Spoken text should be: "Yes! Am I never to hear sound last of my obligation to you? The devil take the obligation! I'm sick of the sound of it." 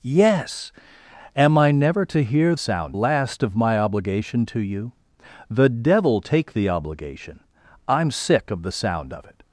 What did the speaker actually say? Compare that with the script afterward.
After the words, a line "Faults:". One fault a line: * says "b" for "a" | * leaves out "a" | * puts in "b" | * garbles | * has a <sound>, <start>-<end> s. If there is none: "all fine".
"Yes! Am I never to hear sound last of my obligation to you? The devil take the obligation! I'm sick of the sound of it."
Faults:
all fine